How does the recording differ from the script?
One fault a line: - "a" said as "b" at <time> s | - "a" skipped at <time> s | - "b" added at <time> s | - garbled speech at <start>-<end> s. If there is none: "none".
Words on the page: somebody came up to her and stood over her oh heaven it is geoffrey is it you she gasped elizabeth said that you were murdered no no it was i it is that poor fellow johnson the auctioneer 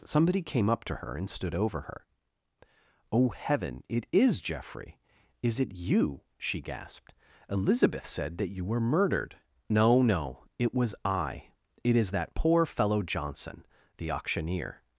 none